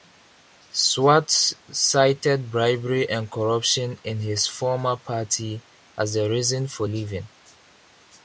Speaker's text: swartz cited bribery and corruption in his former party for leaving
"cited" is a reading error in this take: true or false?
false